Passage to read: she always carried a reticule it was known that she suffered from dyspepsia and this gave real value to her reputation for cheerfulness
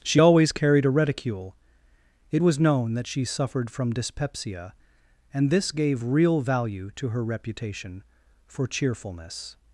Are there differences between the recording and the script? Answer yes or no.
no